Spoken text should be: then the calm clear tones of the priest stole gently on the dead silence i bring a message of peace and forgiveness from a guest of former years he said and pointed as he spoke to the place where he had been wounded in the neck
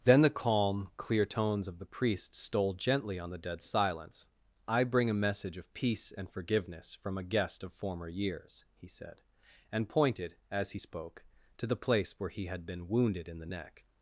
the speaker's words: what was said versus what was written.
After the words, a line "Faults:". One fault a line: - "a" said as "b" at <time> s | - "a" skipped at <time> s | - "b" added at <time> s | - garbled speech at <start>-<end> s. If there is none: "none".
then the calm clear tones of the priest stole gently on the dead silence i bring a message of peace and forgiveness from a guest of former years he said and pointed as he spoke to the place where he had been wounded in the neck
Faults:
none